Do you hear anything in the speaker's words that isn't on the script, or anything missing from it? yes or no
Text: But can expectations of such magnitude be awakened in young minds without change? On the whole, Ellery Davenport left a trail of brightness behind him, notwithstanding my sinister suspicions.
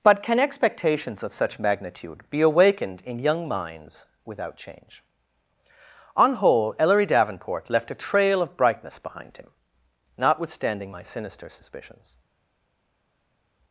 yes